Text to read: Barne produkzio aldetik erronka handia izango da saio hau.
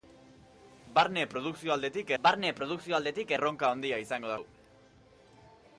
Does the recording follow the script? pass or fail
fail